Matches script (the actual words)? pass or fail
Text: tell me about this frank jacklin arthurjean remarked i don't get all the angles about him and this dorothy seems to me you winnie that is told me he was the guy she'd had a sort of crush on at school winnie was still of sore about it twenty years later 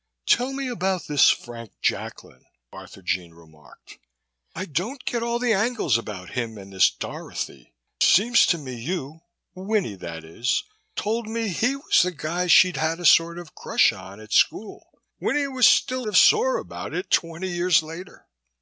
pass